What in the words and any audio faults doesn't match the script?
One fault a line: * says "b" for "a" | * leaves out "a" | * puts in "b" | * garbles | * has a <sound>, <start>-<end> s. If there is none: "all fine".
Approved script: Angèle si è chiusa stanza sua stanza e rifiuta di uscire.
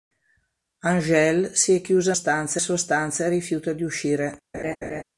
* has a laugh, 4.5-5.0 s